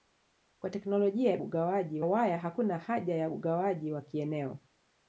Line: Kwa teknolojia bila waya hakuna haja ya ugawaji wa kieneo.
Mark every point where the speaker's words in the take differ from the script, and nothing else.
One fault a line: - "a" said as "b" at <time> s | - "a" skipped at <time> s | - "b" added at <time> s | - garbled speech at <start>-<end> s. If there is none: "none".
- "bila" said as "ugawaji" at 1.4 s